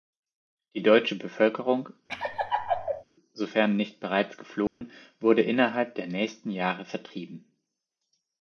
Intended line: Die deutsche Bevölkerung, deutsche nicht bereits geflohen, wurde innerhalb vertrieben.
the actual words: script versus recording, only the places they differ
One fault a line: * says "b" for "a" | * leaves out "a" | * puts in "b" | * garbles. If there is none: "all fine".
* says "sofern" for "deutsche"
* puts in "der nächsten Jahre"